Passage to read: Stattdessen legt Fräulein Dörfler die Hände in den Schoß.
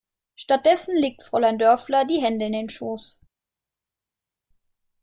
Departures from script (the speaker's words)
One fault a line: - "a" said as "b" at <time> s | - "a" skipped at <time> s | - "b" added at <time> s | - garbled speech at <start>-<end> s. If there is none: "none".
none